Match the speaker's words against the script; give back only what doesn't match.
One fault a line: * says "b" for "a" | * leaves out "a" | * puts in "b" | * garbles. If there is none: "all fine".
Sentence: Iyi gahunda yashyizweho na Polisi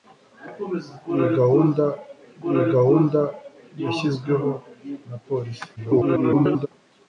* puts in "iyi gahunda"
* garbles